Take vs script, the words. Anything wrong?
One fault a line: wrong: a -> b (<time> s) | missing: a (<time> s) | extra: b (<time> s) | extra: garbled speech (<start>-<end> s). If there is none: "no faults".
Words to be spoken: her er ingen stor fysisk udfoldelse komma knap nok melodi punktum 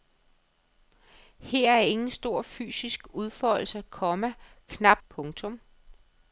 missing: nok melodi (5.0 s)